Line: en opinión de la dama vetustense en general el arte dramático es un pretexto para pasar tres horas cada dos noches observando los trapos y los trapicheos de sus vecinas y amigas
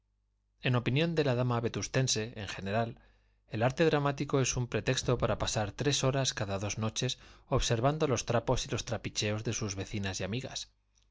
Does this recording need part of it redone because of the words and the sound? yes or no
no